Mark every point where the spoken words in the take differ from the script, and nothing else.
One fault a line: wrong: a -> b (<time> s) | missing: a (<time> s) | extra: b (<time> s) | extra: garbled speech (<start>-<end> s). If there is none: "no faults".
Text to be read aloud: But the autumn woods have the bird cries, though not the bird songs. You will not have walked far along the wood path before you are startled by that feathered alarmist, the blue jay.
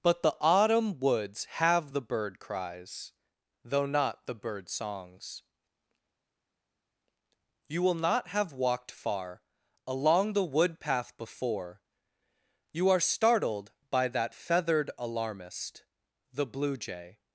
no faults